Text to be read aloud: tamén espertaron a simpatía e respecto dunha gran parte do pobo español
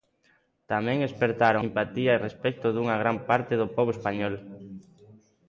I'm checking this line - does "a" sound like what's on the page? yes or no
no